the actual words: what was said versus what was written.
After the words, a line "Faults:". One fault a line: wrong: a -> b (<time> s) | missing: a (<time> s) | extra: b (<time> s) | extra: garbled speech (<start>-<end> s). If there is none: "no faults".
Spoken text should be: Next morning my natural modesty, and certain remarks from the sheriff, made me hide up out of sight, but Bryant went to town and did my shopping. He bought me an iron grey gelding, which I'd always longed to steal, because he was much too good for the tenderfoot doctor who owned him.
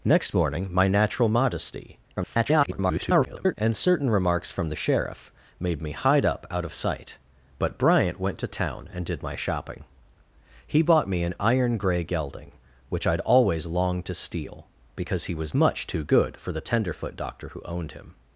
Next morning my natural modesty, [garbled] and certain remarks from the sheriff, made me hide up out of sight, but Bryant went to town and did my shopping. He bought me an iron grey gelding, which I'd always longed to steal, because he was much too good for the tenderfoot doctor who owned him.
Faults:
extra: garbled speech (2.2-3.5 s)